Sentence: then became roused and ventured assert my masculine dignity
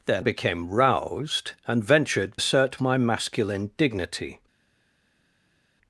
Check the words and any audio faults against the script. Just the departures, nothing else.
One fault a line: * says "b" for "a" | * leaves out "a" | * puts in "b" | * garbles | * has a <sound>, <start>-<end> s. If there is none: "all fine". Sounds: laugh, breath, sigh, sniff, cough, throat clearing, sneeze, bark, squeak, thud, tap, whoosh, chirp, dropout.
all fine